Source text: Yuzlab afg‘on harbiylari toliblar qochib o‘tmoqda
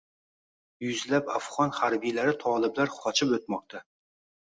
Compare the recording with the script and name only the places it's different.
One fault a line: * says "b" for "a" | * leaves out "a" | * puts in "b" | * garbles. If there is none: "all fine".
all fine